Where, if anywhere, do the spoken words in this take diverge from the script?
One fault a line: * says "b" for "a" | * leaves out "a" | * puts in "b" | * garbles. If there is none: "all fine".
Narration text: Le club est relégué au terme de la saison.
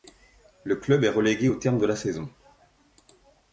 all fine